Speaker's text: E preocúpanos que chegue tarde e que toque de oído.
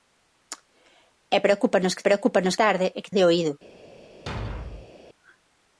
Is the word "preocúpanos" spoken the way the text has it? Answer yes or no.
yes